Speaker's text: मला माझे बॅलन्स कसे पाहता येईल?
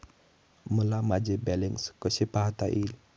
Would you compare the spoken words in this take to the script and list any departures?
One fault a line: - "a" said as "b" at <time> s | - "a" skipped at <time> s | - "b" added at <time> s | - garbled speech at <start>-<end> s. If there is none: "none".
none